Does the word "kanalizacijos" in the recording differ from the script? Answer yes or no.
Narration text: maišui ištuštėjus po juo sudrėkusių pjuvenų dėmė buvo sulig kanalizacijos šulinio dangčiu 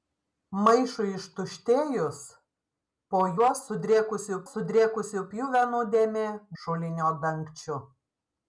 yes